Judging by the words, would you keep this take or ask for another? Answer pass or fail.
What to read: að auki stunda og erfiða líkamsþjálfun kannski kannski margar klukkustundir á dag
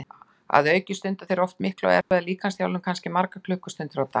fail